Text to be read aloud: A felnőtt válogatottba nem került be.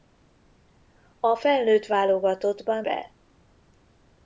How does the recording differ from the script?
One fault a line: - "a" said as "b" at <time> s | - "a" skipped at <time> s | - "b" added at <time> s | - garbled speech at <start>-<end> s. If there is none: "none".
- "nem került" skipped at 2.8 s